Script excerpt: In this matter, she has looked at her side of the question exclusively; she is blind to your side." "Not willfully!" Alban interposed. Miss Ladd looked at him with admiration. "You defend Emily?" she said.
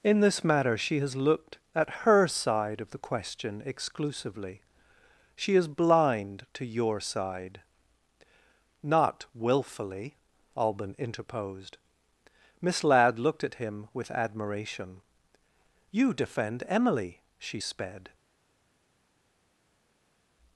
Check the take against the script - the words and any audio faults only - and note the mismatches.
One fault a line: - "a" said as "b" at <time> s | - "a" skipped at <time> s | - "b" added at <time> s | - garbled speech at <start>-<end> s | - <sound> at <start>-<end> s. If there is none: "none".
- "said" said as "sped" at 17.6 s